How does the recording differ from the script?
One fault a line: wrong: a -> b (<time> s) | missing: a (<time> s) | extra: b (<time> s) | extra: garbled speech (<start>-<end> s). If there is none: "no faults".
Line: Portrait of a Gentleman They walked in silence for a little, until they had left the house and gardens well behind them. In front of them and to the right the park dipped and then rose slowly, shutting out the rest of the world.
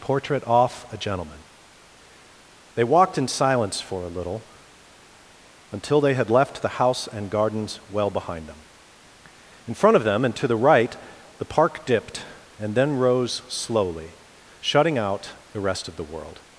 wrong: of -> off (0.5 s)